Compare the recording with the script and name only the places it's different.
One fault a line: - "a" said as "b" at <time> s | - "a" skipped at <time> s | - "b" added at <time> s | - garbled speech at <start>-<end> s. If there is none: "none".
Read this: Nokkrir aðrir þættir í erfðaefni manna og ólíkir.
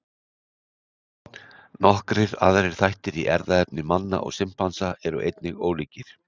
- "simpansa eru einnig" added at 4.4 s